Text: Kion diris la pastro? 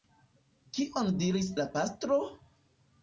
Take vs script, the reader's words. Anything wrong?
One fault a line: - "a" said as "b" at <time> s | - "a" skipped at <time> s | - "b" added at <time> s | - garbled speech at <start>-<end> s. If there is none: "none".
none